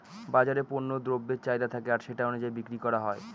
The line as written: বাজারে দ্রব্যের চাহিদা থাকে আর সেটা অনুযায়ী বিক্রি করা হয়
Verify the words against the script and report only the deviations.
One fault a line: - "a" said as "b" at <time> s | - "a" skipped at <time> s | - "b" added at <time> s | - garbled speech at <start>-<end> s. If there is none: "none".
- "পণ্য" added at 0.7 s